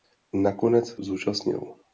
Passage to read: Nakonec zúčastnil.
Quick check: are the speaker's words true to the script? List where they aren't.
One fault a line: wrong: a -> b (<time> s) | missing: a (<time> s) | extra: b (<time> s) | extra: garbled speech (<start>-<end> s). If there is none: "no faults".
no faults